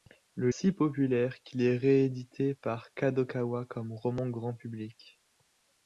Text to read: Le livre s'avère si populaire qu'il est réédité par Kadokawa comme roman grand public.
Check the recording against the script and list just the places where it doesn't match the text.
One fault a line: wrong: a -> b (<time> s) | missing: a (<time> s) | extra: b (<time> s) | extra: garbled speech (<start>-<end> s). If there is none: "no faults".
missing: livre s'avère (0.5 s)